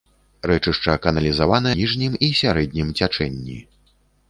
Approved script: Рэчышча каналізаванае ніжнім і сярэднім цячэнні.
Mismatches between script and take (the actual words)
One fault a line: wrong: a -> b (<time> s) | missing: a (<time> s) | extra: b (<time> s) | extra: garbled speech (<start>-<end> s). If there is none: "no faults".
no faults